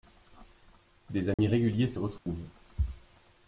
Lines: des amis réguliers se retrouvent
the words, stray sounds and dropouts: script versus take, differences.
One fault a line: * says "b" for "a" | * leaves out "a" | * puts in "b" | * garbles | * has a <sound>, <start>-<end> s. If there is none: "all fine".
* has a dropout, 1.3-1.4 s
* has a dropout, 2.2-2.3 s